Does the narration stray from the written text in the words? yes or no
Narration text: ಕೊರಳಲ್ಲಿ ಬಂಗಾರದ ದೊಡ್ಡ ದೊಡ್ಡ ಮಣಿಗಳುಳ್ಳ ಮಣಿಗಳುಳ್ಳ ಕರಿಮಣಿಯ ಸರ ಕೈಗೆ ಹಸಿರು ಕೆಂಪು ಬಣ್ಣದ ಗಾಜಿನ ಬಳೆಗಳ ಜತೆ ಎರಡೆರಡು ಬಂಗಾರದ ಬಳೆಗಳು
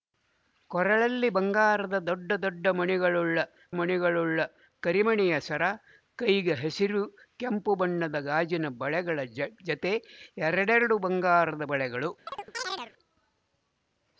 no